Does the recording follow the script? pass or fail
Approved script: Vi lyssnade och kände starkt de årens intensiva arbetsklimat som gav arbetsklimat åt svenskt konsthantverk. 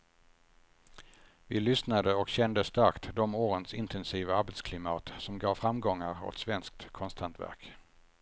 fail